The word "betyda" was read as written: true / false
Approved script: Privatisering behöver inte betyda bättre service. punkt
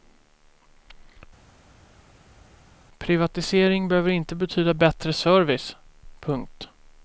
true